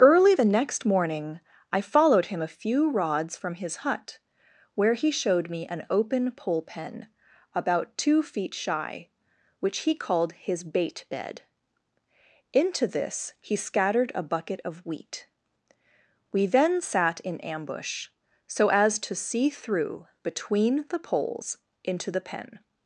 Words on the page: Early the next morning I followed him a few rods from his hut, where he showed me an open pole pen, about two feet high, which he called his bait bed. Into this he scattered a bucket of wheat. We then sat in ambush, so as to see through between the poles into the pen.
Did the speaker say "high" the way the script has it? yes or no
no